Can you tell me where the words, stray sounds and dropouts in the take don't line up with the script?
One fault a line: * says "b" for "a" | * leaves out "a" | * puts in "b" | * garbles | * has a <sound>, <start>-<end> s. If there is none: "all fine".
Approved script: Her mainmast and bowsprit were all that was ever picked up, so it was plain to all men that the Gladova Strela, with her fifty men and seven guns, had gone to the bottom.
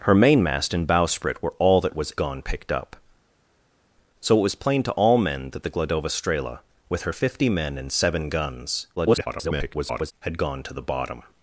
* says "gone" for "ever"
* garbles